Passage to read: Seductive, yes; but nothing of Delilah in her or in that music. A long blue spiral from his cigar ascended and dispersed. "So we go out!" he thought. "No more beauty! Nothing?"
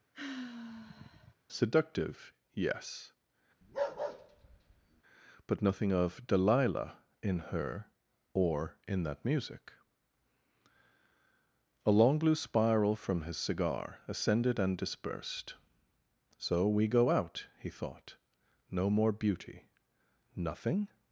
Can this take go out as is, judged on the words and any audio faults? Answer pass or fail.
fail